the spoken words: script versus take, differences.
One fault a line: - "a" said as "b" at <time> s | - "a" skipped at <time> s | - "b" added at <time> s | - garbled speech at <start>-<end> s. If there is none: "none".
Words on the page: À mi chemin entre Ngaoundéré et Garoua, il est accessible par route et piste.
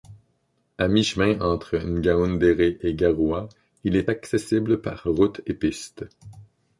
none